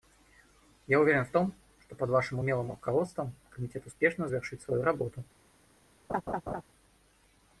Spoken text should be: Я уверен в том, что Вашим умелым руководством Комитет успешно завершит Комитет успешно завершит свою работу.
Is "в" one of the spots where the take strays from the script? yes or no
no